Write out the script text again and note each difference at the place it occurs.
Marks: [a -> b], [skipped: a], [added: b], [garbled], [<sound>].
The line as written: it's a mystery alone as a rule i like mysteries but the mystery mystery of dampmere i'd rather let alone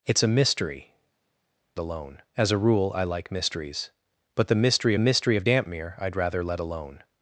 it's a mystery alone as a rule i like mysteries but the mystery mystery of dampmere i'd rather let alone